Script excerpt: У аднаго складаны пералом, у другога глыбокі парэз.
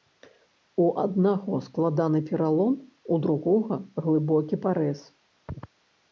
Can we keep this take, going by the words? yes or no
yes